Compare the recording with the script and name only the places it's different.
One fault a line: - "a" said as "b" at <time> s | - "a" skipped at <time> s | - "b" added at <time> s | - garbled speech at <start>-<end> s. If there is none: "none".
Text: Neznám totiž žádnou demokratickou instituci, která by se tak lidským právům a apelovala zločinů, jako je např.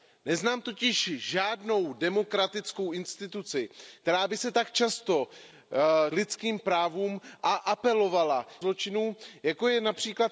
none